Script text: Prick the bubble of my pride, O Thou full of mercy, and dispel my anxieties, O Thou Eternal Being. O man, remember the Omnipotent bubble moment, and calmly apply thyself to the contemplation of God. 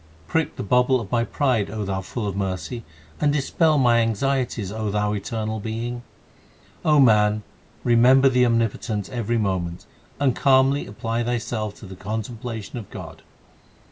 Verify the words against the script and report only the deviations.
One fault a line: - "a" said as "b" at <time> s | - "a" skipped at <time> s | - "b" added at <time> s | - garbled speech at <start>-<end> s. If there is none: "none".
- "bubble" said as "every" at 9.1 s